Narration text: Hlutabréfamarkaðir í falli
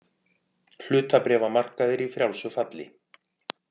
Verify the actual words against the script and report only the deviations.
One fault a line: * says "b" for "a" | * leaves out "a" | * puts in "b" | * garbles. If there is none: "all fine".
* puts in "frjálsu"